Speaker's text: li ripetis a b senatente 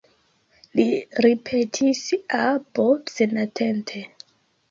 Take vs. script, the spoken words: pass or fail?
pass